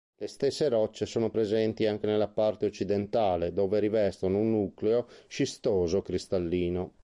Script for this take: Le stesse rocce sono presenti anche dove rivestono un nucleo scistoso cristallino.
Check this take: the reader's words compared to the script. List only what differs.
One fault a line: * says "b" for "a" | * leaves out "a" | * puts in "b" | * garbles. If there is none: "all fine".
* puts in "nella parte occidentale"